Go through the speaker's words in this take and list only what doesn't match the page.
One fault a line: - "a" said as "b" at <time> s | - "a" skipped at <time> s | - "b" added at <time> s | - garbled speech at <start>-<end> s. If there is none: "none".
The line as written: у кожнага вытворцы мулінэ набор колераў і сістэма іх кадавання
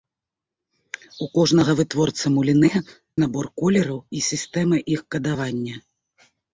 none